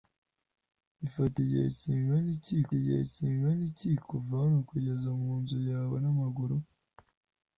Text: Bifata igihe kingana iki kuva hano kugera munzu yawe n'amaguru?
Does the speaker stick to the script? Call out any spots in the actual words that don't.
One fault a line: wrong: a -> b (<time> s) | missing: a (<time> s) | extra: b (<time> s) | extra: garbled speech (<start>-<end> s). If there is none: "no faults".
extra: igihe kingana iki (2.8 s)